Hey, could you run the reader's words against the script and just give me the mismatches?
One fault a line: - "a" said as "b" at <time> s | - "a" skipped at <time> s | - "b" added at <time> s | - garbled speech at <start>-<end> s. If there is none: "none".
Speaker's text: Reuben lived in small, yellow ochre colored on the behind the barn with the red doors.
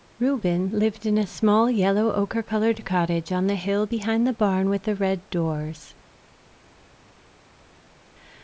- "a" added at 1.2 s
- "cottage" added at 2.8 s
- "hill" added at 3.6 s